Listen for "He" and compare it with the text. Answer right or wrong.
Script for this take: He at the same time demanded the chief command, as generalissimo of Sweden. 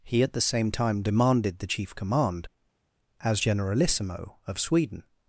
right